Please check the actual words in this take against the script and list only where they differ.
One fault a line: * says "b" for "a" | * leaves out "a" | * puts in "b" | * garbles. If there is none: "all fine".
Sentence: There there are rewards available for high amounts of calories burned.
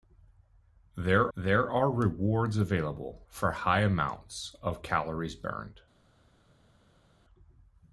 all fine